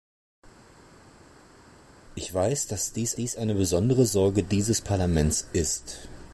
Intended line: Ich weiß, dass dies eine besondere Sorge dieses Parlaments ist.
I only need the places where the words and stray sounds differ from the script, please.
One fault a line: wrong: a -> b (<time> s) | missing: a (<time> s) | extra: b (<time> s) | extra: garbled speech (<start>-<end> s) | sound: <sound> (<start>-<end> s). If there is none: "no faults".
extra: dies (3.1 s)